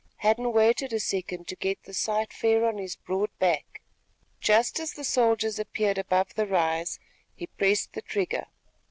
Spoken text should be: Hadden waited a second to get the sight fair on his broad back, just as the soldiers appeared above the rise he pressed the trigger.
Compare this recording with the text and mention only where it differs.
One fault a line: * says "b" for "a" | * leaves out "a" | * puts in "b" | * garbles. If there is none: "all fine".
all fine